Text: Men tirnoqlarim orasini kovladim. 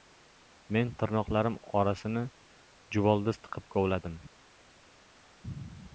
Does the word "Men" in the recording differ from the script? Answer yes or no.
no